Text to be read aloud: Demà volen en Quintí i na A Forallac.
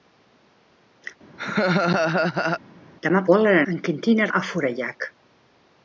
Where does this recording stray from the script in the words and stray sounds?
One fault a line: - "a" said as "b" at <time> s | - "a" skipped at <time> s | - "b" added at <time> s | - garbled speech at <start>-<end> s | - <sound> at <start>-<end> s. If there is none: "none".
- laugh at 1.4-2.6 s